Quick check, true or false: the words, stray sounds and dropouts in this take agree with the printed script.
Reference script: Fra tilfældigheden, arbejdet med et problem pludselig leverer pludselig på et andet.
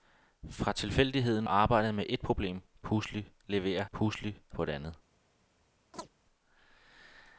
false